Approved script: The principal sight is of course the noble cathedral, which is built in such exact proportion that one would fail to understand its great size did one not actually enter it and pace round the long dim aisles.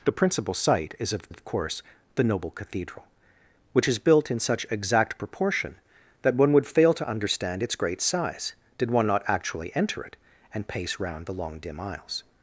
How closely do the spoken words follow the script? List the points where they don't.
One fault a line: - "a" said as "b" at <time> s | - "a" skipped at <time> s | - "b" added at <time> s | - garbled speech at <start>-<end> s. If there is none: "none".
- "of" added at 1.3 s